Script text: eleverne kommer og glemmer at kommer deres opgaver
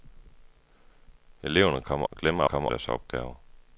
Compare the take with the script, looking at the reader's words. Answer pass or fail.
pass